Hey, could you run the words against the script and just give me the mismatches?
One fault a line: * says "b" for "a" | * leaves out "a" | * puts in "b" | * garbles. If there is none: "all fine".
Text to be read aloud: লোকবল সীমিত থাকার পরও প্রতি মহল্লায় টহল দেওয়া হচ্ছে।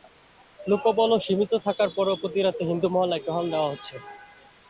* puts in "রাতে হিন্দু"